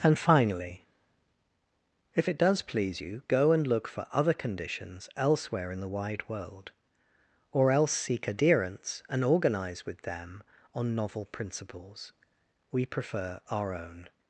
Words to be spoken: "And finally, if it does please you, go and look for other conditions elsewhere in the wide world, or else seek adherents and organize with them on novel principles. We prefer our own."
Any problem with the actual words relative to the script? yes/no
no